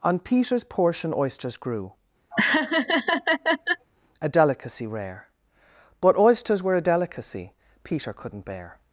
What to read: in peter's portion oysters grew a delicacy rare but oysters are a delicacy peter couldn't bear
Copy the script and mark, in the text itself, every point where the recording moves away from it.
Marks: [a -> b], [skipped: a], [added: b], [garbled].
[in -> on] peter's portion oysters grew a delicacy rare but oysters [are -> were] a delicacy peter couldn't bear